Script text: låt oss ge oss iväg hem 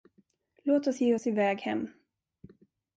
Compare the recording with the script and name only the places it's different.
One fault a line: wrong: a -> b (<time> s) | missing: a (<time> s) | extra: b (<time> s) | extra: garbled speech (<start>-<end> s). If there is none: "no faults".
no faults